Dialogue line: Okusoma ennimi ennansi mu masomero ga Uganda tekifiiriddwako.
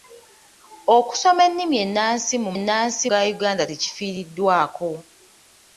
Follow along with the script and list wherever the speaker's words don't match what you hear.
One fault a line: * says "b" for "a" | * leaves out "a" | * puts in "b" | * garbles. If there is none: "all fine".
* says "ennansi" for "masomero"